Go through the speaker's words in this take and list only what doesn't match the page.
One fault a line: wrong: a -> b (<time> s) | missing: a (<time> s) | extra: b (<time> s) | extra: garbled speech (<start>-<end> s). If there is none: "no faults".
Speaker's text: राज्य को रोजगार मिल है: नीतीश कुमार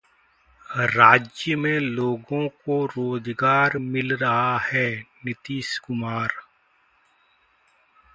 extra: में लोगों (1.5 s)
extra: रहा (4.2 s)